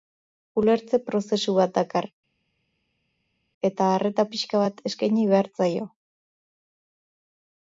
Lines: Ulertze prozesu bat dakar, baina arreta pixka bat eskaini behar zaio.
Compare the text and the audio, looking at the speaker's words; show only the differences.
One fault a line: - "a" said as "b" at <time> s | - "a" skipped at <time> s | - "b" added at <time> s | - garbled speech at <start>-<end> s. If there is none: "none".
- "baina" said as "eta" at 3.7 s